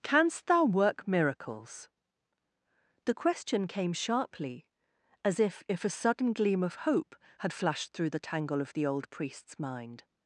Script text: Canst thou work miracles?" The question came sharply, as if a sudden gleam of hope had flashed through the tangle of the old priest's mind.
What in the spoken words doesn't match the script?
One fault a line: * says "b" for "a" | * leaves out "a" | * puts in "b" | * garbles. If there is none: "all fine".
* puts in "if"